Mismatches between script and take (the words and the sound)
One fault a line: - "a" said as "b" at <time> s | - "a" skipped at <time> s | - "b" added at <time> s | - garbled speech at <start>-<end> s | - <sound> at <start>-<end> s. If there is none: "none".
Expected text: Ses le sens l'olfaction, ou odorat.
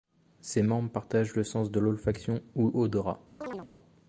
- "membres partagent" added at 0.6 s
- "de" added at 1.7 s
- chirp at 3.4-3.7 s